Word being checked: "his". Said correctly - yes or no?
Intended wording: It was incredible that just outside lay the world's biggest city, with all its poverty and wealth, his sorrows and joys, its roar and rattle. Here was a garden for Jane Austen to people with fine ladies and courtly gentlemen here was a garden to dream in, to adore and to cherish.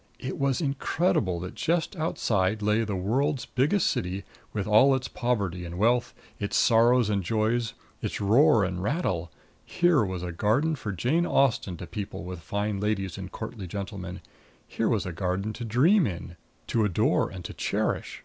no